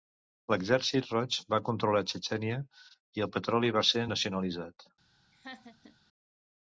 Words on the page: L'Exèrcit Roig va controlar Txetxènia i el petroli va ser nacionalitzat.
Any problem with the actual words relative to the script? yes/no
no